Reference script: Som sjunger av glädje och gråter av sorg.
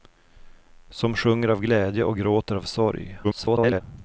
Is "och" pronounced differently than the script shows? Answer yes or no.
no